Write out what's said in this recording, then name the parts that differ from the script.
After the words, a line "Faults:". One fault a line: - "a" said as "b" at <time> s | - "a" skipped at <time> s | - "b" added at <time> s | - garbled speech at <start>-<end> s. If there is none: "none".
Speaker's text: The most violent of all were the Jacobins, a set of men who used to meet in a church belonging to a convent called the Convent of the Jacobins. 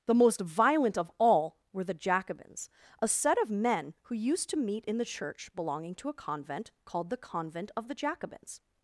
The most violent of all were the Jacobins, a set of men who used to meet in the church belonging to a convent called the Convent of the Jacobins.
Faults:
- "a" said as "the" at 5.0 s